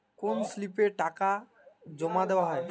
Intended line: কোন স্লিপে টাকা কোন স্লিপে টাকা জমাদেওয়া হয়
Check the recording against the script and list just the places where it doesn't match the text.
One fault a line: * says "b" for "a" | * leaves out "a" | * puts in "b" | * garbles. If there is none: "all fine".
* leaves out "কোন স্লিপে টাকা"